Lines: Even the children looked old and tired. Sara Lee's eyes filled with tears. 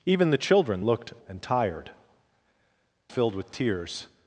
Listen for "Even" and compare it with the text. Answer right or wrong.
right